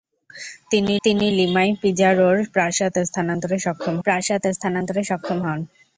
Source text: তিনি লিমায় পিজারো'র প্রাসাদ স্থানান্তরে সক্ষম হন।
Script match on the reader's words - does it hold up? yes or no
no